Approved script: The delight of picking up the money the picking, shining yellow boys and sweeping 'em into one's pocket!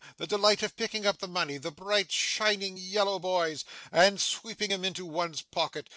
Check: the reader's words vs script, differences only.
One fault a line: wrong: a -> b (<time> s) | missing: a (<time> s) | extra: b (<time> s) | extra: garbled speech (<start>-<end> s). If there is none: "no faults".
wrong: picking -> bright (1.7 s)